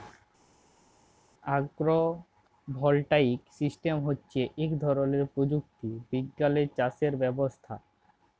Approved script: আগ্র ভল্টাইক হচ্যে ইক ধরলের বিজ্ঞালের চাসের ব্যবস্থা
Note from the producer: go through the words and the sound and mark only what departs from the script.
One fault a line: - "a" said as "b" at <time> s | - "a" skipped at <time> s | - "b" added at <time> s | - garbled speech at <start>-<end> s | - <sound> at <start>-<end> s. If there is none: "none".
- "সিস্টেম" added at 3.6 s
- "প্রযুক্তি" added at 5.3 s